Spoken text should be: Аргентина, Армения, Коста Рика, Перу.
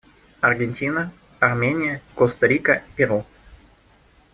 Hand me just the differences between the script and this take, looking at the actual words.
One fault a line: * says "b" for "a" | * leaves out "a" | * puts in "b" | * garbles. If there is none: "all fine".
all fine